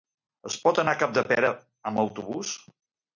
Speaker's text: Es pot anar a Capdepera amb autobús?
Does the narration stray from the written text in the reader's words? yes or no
no